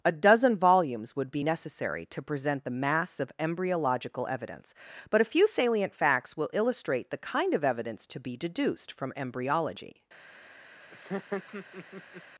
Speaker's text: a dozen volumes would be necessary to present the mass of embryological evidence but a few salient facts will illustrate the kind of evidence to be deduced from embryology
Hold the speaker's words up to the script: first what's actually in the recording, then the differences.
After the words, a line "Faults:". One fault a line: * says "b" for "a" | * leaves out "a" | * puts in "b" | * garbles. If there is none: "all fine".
a dozen volumes would be necessary to present the mass of embryological evidence but a few salient facts will illustrate the kind of evidence to be deduced from embryology
Faults:
all fine